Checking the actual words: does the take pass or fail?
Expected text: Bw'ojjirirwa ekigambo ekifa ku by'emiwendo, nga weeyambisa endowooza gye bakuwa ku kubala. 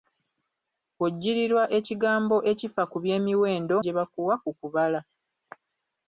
fail